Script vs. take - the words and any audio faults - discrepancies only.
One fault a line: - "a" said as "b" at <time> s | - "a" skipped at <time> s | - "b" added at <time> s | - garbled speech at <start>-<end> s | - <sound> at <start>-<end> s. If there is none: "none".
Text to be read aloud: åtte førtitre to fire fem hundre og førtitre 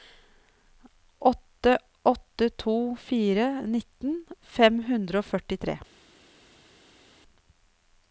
- "førtitre" said as "åtte" at 2.0 s
- "nitten" added at 3.7 s